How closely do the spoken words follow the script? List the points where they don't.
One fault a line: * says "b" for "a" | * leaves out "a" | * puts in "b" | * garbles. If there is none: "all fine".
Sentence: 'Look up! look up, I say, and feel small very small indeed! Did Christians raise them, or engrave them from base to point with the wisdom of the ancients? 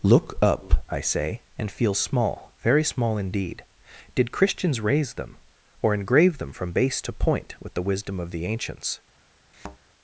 * leaves out "look up"